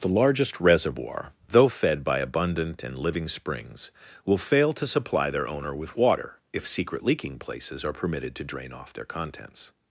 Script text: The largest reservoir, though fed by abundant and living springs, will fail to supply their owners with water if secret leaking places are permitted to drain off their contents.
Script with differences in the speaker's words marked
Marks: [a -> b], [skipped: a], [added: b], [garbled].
The largest reservoir, though fed by abundant and living springs, will fail to supply their [owners -> owner] with water if secret leaking places are permitted to drain off their contents.